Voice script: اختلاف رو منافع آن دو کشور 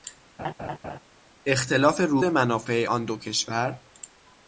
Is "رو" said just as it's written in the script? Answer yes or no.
yes